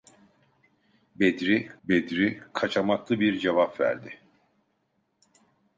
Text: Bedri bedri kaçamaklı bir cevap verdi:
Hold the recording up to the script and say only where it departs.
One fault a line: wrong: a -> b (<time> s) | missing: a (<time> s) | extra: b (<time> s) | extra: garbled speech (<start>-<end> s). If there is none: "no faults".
no faults